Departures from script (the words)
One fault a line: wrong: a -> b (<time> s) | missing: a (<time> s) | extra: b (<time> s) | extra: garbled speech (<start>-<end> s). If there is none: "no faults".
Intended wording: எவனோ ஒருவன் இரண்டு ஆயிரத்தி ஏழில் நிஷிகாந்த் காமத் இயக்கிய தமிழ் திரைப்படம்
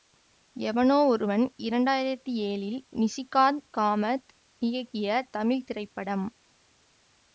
no faults